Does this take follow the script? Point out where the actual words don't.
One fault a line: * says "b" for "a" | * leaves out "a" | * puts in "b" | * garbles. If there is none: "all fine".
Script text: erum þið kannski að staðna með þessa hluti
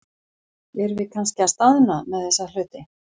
* says "við" for "þið"